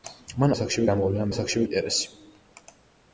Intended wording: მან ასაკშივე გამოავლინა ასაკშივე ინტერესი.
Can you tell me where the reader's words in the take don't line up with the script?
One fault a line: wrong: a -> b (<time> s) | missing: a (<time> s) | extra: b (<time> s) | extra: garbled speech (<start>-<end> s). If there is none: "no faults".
no faults